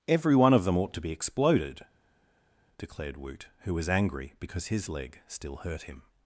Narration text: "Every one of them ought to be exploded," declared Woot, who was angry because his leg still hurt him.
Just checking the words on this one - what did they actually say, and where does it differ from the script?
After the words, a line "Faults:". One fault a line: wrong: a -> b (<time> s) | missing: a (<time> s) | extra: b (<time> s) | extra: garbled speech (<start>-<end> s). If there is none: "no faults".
"Every one of them ought to be exploded," declared Woot, who was angry because his leg still hurt him.
Faults:
no faults